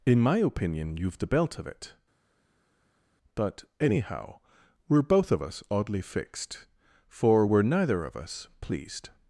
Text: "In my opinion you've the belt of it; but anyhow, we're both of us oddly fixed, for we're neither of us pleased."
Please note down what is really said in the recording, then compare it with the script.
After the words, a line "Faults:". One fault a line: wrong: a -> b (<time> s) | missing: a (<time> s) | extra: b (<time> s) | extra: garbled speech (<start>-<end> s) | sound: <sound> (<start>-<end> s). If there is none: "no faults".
"In my opinion you've the belt of it; but anyhow, we're both of us oddly fixed, for we're neither of us pleased."
Faults:
no faults